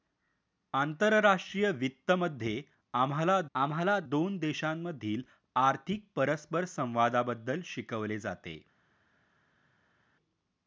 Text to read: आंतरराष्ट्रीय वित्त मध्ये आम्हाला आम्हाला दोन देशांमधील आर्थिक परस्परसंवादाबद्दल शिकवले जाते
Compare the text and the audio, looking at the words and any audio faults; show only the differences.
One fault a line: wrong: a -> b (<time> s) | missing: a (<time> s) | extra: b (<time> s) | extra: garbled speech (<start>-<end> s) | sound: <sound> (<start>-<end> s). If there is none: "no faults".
no faults